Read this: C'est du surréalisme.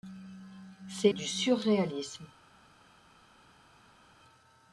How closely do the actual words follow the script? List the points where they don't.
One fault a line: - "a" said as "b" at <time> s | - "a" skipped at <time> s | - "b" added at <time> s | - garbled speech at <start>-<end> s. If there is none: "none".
none